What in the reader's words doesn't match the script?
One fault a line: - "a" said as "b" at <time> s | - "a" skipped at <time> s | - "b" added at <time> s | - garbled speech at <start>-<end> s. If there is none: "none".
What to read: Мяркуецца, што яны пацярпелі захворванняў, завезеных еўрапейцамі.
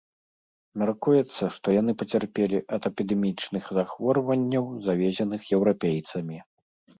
- "ад эпідэмічных" added at 2.8 s